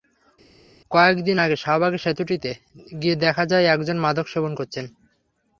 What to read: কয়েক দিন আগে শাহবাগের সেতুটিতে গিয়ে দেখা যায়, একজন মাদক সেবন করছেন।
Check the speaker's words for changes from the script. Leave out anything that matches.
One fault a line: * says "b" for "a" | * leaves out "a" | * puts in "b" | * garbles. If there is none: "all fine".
all fine